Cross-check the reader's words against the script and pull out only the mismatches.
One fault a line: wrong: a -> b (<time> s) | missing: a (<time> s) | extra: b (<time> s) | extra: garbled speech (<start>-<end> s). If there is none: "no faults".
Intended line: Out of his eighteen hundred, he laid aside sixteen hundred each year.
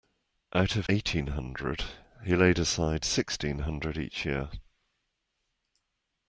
missing: his (0.9 s)